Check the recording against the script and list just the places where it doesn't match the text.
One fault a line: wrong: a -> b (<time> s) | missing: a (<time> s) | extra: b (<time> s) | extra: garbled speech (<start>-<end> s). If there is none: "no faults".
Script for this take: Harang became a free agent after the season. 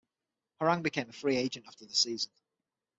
no faults